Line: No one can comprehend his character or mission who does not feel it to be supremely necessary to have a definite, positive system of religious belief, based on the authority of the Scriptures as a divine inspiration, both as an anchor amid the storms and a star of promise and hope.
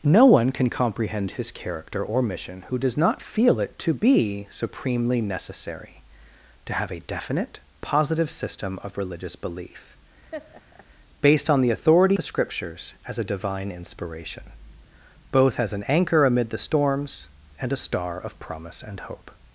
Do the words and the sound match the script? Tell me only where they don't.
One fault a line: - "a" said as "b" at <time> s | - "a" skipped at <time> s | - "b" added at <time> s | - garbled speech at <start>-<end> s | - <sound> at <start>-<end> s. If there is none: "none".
- laugh at 10.3-10.9 s
- "of" skipped at 12.2 s